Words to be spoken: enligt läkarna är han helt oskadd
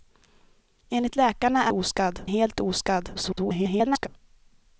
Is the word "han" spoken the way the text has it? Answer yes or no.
no